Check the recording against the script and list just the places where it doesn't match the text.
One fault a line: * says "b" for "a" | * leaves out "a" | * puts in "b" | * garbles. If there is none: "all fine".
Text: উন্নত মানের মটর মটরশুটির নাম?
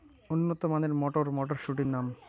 all fine